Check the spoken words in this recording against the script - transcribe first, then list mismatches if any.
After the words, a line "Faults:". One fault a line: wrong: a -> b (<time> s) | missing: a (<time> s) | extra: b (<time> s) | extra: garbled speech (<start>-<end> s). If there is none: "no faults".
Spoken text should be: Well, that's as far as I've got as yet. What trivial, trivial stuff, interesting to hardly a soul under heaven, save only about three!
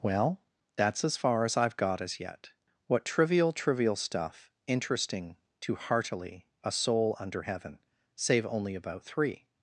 Well, that's as far as I've got as yet. What trivial, trivial stuff, interesting to heartily a soul under heaven, save only about three!
Faults:
wrong: hardly -> heartily (5.8 s)